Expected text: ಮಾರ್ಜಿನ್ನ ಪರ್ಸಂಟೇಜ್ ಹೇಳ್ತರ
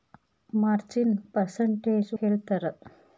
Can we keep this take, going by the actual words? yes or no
yes